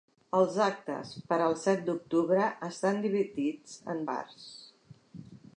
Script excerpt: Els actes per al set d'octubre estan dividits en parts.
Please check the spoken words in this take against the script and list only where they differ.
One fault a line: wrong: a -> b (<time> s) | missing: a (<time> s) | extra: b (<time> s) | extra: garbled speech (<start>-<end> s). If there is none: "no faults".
no faults